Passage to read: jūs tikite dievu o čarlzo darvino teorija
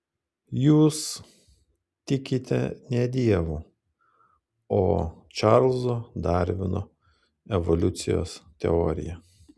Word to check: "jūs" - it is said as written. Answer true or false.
true